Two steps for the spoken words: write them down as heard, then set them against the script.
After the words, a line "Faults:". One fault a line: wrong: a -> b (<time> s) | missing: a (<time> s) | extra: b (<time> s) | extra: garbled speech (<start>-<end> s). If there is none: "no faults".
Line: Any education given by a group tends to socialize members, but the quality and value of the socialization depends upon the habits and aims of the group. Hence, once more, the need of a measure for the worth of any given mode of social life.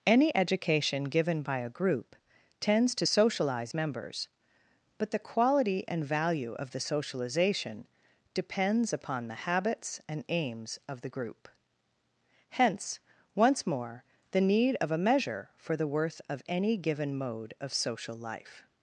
Any education given by a group tends to socialize members, but the quality and value of the socialization depends upon the habits and aims of the group. Hence, once more, the need of a measure for the worth of any given mode of social life.
Faults:
no faults